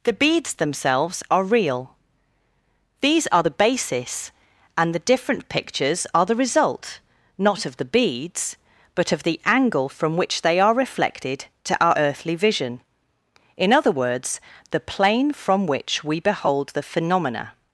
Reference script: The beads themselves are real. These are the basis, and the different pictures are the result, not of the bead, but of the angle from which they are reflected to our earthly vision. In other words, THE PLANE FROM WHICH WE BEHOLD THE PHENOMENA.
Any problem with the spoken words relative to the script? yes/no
yes